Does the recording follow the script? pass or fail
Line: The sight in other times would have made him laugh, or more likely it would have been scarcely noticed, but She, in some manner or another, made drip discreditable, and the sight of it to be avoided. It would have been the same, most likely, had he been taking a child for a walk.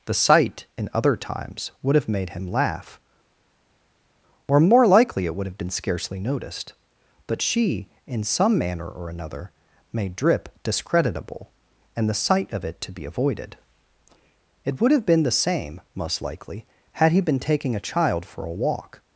pass